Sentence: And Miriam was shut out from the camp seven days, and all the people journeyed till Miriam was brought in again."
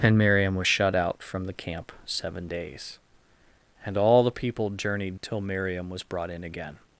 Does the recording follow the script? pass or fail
pass